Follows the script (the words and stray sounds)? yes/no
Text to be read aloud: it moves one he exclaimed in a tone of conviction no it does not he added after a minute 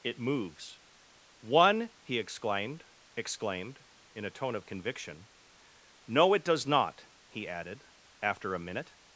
no